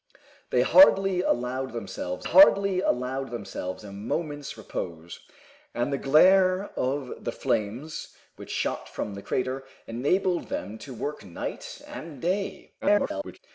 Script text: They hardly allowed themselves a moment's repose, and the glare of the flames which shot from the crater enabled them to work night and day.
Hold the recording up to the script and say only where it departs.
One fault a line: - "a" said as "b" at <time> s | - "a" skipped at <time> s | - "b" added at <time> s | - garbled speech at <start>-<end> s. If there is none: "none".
- "hardly allowed themselves" added at 2.2 s
- garbled speech at 12.8-13.4 s